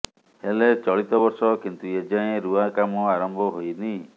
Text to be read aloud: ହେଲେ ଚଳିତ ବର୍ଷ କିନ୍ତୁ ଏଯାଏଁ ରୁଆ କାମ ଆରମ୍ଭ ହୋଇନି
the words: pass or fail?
pass